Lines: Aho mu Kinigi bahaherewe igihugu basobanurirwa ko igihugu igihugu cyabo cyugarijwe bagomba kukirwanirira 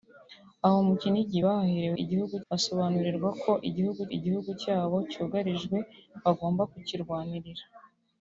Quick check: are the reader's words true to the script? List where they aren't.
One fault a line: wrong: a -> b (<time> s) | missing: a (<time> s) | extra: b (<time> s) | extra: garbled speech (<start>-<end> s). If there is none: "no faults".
no faults